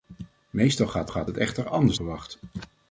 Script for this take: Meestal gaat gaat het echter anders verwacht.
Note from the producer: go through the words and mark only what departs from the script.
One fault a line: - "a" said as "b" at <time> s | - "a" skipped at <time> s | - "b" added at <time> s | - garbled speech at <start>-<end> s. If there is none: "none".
none